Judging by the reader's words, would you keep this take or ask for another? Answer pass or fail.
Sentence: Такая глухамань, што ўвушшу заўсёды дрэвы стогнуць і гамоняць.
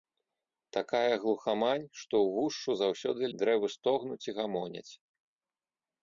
pass